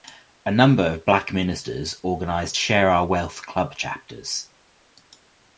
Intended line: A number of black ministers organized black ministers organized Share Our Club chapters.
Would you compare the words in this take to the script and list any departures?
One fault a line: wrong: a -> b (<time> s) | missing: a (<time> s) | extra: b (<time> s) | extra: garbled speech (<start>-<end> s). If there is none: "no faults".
missing: black ministers organized (2.6 s)
extra: Wealth (3.0 s)